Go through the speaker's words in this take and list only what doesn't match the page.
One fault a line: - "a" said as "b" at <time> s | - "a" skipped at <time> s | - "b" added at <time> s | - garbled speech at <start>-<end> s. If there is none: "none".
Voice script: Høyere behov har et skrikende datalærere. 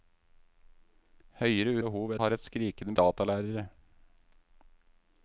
none